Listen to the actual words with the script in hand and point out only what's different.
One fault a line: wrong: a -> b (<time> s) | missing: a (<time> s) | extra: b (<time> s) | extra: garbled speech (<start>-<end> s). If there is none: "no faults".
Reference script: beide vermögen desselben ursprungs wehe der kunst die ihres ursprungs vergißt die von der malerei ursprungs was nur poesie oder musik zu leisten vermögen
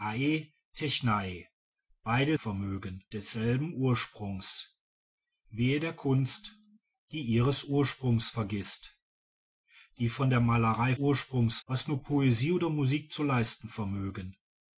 no faults